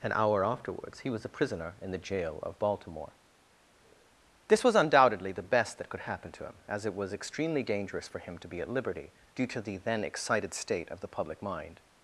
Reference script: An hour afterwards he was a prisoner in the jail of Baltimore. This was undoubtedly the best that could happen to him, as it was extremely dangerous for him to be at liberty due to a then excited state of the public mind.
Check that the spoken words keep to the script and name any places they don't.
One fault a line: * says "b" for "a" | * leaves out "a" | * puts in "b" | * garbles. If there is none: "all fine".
* says "the" for "a"